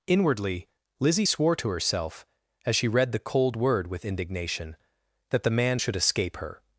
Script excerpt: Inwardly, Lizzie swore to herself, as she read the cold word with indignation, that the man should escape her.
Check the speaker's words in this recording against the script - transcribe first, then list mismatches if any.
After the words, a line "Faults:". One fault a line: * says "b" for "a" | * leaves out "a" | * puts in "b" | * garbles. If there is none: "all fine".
Inwardly, Lizzie swore to herself, as she read the cold word with indignation, that the man should escape her.
Faults:
all fine